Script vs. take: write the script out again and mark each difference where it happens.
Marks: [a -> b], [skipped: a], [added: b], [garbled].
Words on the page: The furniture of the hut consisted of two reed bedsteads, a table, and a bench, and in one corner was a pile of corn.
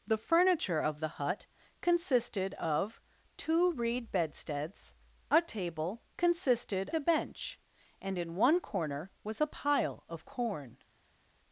The furniture of the hut consisted of two reed bedsteads, a table, [and -> consisted] a bench, and in one corner was a pile of corn.